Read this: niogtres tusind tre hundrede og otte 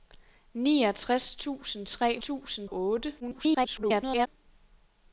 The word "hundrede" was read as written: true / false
false